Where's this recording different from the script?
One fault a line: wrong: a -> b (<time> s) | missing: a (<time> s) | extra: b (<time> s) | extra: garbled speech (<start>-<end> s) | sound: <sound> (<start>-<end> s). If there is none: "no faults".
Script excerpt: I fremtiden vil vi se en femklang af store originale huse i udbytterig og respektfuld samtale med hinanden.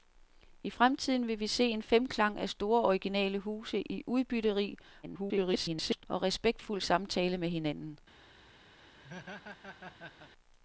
extra: garbled speech (5.0-6.0 s)
sound: laugh (8.8-10.3 s)